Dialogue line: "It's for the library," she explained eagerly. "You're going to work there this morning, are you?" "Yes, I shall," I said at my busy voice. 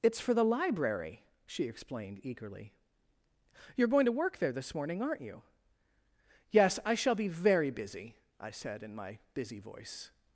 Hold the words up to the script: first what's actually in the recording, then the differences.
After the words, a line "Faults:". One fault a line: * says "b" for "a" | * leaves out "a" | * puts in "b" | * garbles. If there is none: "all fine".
"It's for the library," she explained eagerly. "You're going to work there this morning, aren't you?" "Yes, I shall be very busy," I said in my busy voice.
Faults:
* says "aren't" for "are"
* puts in "be very busy"
* says "in" for "at"